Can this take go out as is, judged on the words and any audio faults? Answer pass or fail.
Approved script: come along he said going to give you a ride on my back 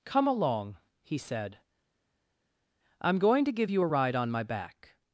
fail